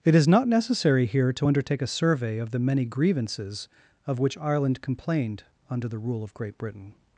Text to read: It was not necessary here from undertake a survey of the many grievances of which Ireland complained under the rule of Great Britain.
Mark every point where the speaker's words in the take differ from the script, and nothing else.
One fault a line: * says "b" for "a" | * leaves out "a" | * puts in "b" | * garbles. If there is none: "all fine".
* says "is" for "was"
* says "to" for "from"